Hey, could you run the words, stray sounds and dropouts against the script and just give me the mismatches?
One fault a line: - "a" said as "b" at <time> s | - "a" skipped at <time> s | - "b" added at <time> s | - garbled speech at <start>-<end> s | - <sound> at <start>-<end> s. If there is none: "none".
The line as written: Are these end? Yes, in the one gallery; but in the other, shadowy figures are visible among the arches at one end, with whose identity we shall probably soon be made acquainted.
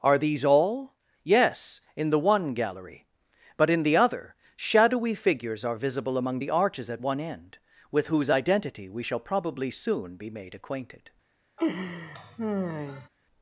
- "end" said as "all" at 0.4 s
- laugh at 11.6-13.1 s